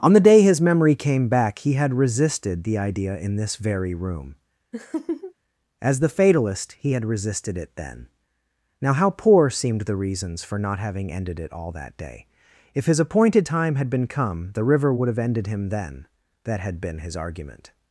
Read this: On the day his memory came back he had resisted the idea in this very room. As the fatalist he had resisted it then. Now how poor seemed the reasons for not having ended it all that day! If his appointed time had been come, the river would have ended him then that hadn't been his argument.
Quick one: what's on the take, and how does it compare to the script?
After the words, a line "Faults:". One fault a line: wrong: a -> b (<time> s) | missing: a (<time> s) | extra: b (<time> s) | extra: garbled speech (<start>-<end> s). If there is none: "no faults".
On the day his memory came back he had resisted the idea in this very room. As the fatalist he had resisted it then. Now how poor seemed the reasons for not having ended it all that day! If his appointed time had been come, the river would have ended him then that had been his argument.
Faults:
wrong: hadn't -> had (16.6 s)